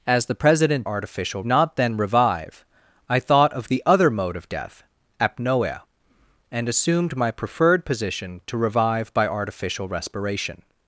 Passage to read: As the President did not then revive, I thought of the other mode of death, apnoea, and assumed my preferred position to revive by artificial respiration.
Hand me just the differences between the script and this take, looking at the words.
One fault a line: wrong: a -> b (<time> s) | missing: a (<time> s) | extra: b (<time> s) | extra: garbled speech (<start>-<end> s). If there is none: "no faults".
wrong: did -> artificial (0.8 s)